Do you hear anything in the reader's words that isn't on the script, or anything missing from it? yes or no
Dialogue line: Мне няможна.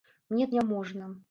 no